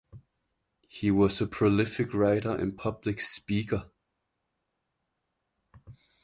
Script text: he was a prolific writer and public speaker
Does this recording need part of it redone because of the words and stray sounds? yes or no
no